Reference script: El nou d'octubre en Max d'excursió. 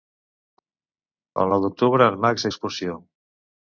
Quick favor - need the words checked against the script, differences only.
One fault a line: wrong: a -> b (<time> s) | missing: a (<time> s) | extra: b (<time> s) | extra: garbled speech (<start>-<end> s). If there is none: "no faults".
no faults